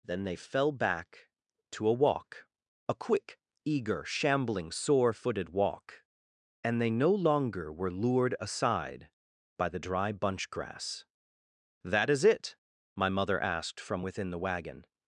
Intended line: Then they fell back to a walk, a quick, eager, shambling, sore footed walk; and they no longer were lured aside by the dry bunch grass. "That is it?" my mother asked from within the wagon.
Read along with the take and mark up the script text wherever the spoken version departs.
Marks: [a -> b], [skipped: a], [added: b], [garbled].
Then they fell back to a walk, a quick, eager, shambling, sore footed walk; and they no longer were lured aside by the dry bunch grass. "That is it?" my mother asked from within the wagon.